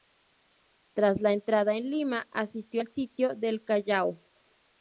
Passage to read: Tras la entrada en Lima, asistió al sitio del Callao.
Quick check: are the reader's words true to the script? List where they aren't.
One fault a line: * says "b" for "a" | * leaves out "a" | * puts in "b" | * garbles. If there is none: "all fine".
all fine